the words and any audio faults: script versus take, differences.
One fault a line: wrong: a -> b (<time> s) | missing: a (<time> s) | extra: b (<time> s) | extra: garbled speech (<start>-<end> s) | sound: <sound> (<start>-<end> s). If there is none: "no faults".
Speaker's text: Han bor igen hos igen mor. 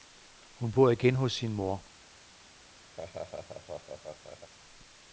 wrong: Han -> Hun (0.5 s)
wrong: igen -> sin (1.3 s)
sound: laugh (3.0-4.5 s)